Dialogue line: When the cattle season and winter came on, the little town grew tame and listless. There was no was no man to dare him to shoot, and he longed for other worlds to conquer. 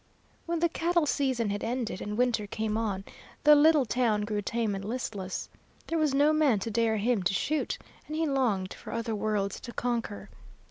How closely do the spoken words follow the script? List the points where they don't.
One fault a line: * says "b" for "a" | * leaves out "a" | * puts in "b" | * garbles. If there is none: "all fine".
* puts in "had ended"
* leaves out "was no"